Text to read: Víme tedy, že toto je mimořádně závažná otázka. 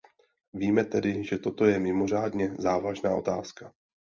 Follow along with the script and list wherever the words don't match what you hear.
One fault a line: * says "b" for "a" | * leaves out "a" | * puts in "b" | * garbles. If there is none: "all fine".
all fine